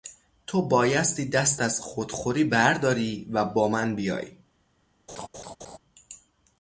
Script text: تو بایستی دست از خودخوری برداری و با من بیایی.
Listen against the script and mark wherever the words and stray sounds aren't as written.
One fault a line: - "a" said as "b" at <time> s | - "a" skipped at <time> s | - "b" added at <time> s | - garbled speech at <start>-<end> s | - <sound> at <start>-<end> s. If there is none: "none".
- laugh at 5.1-5.8 s